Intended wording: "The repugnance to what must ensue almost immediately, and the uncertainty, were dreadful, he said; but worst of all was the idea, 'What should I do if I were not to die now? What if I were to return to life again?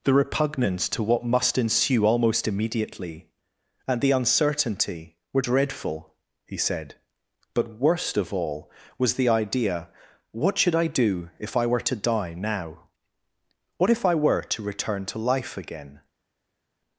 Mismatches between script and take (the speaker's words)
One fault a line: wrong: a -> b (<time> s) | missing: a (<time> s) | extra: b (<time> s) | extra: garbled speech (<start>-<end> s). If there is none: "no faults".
missing: not (11.8 s)